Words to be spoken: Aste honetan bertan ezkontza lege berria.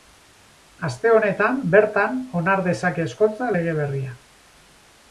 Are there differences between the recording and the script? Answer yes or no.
yes